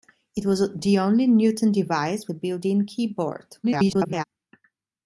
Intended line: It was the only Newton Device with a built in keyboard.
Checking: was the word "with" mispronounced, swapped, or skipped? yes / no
yes